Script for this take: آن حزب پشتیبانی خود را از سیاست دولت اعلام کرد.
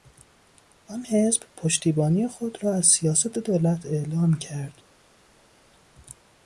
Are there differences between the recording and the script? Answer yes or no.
no